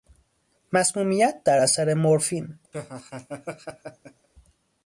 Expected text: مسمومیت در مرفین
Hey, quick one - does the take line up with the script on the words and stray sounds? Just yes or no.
no